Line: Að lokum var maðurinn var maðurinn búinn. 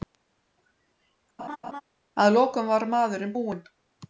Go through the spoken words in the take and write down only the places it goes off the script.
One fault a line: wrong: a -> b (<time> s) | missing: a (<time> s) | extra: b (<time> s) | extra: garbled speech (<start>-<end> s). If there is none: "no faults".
missing: var maðurinn (3.4 s)